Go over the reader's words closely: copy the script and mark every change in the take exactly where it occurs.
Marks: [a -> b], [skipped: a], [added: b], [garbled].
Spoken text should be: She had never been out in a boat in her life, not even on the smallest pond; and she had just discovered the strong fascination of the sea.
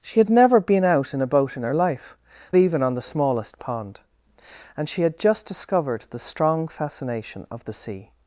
She had never been out in a boat in her life, [skipped: not] even on the smallest pond; and she had just discovered the strong fascination of the sea.